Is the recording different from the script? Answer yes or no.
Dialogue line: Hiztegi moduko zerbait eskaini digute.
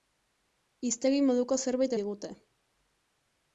yes